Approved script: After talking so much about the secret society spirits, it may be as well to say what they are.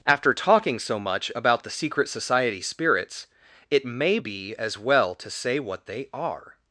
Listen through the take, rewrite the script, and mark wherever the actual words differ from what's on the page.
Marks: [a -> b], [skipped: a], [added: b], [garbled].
After talking so much about the secret society spirits, it may be as well to say what they are.